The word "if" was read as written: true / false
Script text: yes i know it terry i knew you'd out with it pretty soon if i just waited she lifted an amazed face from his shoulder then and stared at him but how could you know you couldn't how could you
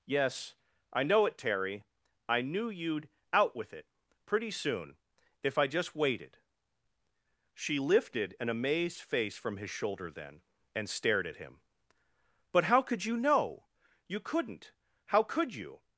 true